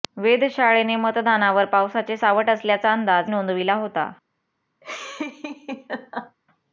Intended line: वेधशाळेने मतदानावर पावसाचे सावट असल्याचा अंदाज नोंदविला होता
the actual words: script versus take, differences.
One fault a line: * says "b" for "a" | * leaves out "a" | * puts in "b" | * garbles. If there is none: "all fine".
all fine